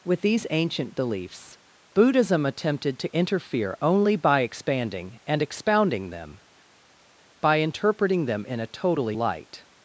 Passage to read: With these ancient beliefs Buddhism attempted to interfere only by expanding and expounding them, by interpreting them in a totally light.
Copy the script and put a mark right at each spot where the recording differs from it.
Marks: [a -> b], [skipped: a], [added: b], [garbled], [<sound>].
With these ancient beliefs Buddhism attempted to interfere only by expanding and expounding them, by interpreting them in a totally light.